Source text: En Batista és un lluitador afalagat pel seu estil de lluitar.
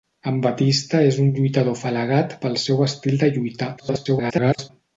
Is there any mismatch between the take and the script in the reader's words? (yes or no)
yes